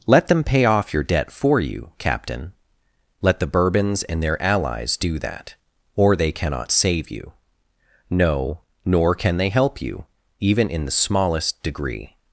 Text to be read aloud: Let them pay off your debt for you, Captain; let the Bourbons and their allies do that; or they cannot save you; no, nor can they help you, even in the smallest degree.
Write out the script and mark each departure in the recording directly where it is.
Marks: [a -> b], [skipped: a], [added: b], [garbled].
Let them pay off your debt for you, Captain; let the Bourbons and their allies do that; or they cannot save you; no, nor can they help you, even in the smallest degree.